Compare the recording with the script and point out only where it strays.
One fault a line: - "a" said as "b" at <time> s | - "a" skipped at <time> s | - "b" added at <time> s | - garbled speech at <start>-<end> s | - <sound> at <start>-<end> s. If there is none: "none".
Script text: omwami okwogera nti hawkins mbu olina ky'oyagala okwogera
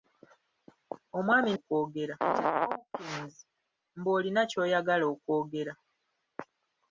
none